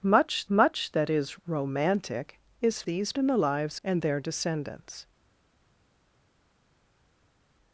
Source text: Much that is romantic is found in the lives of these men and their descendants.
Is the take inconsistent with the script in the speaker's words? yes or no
yes